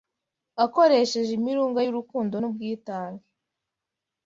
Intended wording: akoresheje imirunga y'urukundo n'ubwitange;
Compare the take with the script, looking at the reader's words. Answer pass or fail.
pass